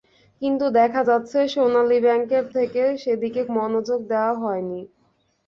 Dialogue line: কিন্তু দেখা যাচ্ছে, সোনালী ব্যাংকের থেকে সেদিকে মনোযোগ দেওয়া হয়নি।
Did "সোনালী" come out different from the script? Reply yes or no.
no